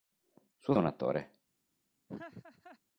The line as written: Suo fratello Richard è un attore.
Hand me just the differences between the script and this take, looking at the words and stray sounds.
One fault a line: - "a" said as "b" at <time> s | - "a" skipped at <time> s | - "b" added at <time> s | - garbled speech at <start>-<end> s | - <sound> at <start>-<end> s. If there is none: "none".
- "fratello Richard è" skipped at 0.7 s
- laugh at 2.1-2.8 s